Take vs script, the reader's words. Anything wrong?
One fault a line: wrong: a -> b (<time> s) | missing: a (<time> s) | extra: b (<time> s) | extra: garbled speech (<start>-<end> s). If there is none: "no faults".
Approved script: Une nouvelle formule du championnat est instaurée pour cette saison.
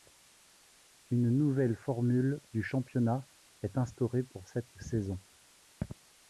no faults